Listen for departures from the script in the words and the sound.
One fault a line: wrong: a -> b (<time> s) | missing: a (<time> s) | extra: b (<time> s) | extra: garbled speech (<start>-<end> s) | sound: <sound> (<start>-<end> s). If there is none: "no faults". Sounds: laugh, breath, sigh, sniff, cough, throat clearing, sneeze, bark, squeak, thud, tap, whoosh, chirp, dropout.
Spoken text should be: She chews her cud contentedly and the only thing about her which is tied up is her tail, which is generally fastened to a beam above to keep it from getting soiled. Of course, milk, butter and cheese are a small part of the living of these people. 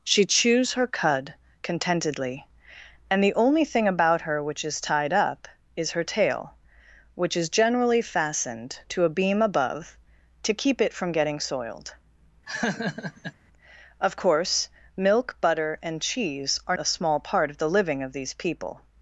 sound: laugh (12.5-13.3 s)